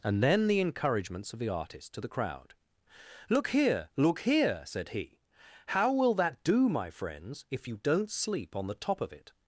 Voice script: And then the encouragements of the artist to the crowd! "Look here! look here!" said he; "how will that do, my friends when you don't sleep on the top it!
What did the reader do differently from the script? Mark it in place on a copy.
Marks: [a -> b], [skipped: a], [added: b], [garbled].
And then the encouragements of the artist to the crowd! "Look here! look here!" said he; "how will that do, my friends [when -> if] you don't sleep on the top [added: of] it!